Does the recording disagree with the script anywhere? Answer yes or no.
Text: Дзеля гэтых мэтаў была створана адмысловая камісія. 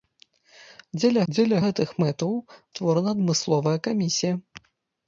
yes